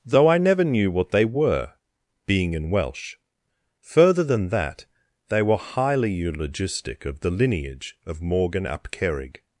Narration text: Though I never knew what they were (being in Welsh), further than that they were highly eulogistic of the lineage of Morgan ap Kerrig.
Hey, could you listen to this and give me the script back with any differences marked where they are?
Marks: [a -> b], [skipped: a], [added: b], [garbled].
Though I never knew what they were (being in Welsh), further than that they were highly eulogistic of the lineage of Morgan ap Kerrig.